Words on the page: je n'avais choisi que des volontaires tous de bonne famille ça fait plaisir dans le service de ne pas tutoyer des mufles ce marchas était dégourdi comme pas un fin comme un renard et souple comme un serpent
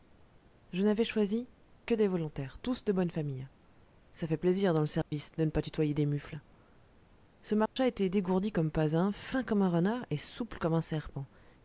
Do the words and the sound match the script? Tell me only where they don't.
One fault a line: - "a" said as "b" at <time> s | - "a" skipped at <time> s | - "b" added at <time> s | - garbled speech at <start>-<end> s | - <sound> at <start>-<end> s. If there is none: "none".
- dropout at 5.0-5.1 s
- dropout at 7.7-7.8 s